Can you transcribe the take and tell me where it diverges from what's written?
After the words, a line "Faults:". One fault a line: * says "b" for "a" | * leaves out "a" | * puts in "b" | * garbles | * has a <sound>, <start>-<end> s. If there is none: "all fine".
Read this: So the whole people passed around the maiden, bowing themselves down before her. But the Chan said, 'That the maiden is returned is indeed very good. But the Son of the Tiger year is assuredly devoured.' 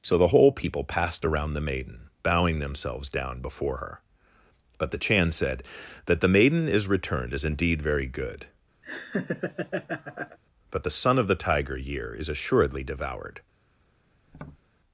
So the whole people passed around the maiden, bowing themselves down before her. But the Chan said, 'That the maiden is returned is indeed very good. But the Son of the Tiger year is assuredly devoured.'
Faults:
* has a laugh, 8.8-10.4 s
* has a tap, 14.3-14.6 s